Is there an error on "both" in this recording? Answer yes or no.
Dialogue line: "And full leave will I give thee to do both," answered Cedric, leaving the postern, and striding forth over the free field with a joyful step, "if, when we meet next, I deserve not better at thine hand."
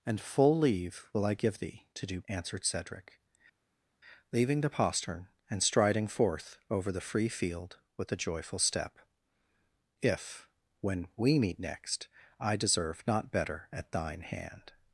yes